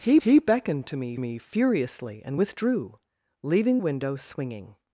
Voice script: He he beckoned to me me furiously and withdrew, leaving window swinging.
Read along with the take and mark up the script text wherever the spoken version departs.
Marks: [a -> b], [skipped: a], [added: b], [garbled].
He he beckoned to me me furiously and withdrew, leaving window swinging.